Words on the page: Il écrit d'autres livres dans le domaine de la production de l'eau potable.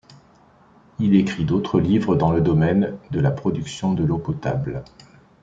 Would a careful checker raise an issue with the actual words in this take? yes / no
no